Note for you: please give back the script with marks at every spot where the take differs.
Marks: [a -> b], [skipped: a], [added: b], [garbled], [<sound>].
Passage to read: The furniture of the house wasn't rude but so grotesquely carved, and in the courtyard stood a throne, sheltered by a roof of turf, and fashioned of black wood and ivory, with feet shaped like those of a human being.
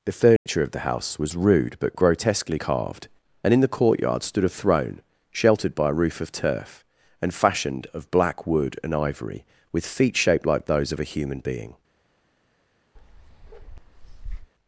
The furniture [dropout] of the house [wasn't -> was] rude but [skipped: so] grotesquely carved, and in the courtyard stood a throne, sheltered by a roof of turf, and fashioned of black wood and ivory, with feet shaped like those of a human being. [bark]